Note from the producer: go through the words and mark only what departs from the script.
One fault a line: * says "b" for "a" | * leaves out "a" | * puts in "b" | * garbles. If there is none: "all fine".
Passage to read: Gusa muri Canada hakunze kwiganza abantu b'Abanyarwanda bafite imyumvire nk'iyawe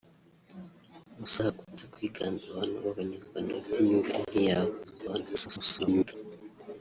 * leaves out "muri Canada"
* garbles